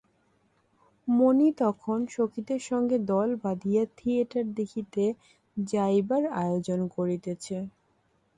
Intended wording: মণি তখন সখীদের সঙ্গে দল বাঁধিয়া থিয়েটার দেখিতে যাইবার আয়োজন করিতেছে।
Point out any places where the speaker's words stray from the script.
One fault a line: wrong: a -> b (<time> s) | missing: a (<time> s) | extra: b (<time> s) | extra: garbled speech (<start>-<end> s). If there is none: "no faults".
no faults